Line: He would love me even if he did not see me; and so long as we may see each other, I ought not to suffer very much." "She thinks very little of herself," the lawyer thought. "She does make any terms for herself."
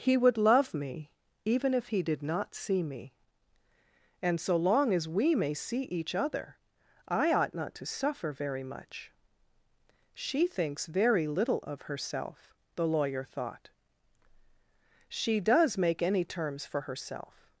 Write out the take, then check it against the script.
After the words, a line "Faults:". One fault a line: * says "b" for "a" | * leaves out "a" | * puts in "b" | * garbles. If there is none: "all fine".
He would love me even if he did not see me; and so long as we may see each other, I ought not to suffer very much." "She thinks very little of herself," the lawyer thought. "She does make any terms for herself."
Faults:
all fine